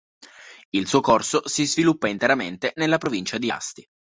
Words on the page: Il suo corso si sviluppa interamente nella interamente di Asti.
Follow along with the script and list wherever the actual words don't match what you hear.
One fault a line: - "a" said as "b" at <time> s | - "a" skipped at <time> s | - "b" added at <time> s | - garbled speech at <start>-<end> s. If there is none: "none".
- "interamente" said as "provincia" at 3.0 s